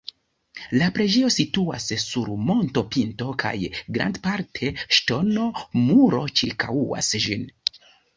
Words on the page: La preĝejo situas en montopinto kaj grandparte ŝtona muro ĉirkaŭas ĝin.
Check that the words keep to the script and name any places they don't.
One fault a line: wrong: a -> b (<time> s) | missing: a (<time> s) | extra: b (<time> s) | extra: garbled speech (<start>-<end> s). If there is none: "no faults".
wrong: en -> sur (2.0 s)